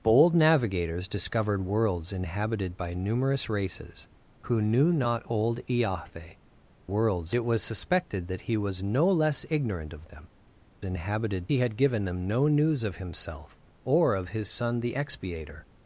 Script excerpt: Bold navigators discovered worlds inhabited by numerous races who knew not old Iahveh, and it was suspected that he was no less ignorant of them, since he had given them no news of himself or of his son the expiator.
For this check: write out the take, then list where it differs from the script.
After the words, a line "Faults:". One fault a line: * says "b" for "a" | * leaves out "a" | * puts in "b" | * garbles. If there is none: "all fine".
Bold navigators discovered worlds inhabited by numerous races who knew not old Iahveh, worlds it was suspected that he was no less ignorant of them, inhabited he had given them no news of himself or of his son the expiator.
Faults:
* says "worlds" for "and"
* says "inhabited" for "since"